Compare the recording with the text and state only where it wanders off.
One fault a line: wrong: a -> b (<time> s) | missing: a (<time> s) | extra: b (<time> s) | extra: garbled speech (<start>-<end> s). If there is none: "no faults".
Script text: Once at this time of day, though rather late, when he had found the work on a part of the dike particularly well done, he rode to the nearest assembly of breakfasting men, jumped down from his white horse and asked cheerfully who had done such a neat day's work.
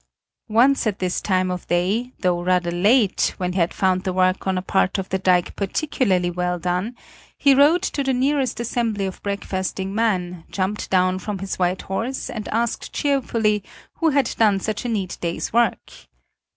missing: he (3.5 s)